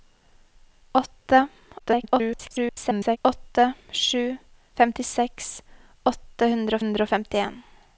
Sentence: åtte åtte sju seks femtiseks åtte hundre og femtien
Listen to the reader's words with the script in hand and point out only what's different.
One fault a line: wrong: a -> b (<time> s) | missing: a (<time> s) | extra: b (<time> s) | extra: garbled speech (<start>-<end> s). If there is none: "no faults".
extra: garbled speech (1.8-3.2 s)
missing: seks (4.4 s)
extra: hundre (6.8 s)